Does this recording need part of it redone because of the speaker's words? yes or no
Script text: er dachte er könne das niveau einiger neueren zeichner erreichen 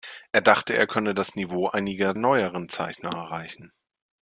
no